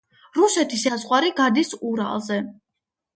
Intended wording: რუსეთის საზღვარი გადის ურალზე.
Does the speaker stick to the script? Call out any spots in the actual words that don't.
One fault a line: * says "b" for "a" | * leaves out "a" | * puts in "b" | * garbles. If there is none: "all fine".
all fine